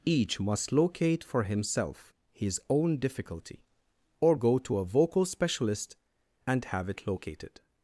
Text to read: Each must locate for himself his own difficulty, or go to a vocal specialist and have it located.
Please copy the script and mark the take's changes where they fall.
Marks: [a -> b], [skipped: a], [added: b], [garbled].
Each must locate for himself his own difficulty, or go to a vocal specialist and have it located.